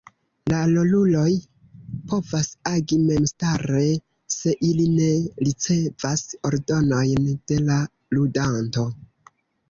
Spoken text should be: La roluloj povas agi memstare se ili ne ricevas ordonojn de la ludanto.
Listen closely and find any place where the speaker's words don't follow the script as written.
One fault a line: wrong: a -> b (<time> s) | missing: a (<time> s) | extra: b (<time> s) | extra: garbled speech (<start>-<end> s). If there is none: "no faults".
no faults